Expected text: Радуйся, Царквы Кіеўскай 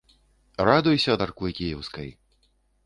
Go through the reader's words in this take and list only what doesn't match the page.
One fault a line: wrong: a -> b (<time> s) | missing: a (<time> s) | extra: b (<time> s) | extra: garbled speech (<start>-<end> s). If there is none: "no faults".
no faults